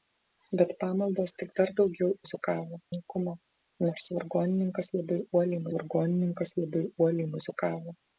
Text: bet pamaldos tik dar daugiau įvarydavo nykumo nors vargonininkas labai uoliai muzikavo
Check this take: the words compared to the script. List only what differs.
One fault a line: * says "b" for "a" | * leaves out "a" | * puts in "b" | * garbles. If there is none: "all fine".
* says "muzikavo" for "įvarydavo"
* puts in "vargonininkas labai uoliai"